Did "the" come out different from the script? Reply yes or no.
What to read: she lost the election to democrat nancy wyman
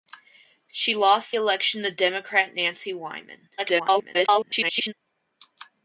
yes